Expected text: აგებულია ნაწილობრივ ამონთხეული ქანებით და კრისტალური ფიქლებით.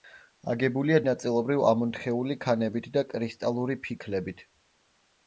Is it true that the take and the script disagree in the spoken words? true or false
false